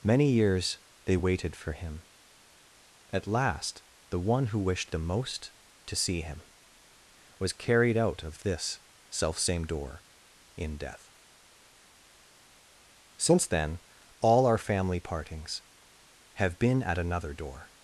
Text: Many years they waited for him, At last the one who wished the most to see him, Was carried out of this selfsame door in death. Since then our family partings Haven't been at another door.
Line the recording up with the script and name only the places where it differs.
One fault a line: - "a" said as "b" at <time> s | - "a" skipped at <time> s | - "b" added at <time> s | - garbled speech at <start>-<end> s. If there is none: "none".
- "all" added at 14.2 s
- "Haven't" said as "Have" at 16.3 s